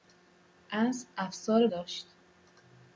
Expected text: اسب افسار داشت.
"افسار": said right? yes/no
yes